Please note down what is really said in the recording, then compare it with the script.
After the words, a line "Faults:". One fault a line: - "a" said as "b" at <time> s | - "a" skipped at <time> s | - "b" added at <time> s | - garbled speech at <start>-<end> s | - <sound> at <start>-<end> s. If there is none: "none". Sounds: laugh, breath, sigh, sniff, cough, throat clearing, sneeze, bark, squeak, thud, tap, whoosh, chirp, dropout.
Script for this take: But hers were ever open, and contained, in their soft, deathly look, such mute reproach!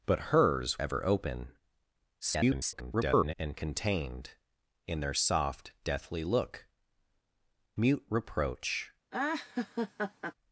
But hers ever open, [garbled] and contained, in their soft, deathly look, mute reproach!
Faults:
- "were" skipped at 0.8 s
- garbled speech at 2.2-3.3 s
- "such" skipped at 6.7 s
- laugh at 9.1-10.3 s